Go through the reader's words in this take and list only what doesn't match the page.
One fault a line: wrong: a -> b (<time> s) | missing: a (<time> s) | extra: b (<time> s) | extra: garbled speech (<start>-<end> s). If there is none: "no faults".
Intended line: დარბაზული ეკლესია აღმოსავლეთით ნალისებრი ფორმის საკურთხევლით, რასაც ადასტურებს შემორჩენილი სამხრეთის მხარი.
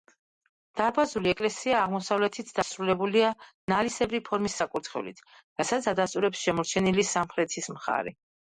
extra: დასრულებულია (2.6 s)